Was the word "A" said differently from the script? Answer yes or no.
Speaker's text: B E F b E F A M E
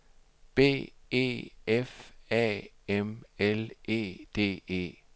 yes